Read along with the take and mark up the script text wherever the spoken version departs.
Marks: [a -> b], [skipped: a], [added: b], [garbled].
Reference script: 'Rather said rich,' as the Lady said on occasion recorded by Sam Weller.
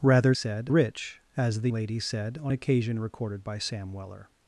'Rather said rich,' as the Lady said on occasion recorded by Sam Weller.